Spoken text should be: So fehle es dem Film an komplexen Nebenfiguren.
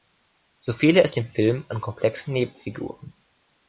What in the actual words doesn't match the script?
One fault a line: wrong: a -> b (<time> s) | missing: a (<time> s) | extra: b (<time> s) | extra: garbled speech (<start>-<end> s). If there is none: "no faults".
no faults